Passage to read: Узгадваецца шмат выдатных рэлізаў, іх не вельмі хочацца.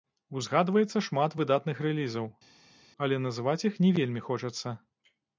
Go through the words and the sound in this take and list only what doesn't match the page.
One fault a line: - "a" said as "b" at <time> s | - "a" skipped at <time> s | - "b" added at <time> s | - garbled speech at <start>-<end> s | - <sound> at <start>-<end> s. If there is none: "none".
- "але называць" added at 3.1 s